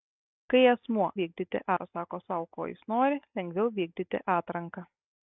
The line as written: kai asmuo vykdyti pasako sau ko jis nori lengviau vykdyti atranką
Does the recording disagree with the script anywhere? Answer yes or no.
no